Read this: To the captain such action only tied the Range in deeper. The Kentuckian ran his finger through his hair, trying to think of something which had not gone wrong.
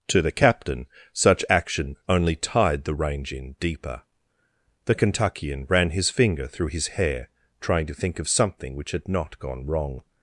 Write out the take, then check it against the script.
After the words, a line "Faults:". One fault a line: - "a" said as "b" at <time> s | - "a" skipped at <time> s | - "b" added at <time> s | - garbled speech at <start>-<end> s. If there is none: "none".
To the captain such action only tied the Range in deeper. The Kentuckian ran his finger through his hair, trying to think of something which had not gone wrong.
Faults:
none